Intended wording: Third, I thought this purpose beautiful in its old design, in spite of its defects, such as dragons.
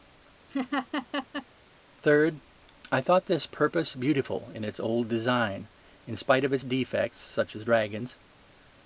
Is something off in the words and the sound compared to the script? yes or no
yes